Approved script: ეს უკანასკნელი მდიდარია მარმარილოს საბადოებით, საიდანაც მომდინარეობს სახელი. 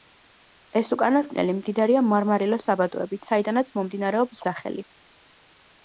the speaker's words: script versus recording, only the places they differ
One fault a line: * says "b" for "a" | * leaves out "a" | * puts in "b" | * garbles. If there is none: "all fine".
all fine